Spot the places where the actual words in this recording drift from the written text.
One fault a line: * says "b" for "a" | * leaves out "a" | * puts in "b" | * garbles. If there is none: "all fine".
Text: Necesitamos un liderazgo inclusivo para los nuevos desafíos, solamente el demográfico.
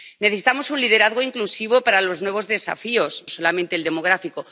all fine